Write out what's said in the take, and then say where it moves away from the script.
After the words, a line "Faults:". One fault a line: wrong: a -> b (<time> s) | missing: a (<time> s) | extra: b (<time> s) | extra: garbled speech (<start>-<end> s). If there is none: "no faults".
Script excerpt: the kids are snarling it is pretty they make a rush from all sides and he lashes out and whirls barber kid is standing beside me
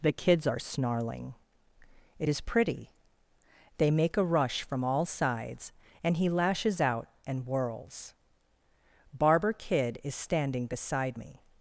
the kids are snarling it is pretty they make a rush from all sides and he lashes out and whirls barber kid is standing beside me
Faults:
no faults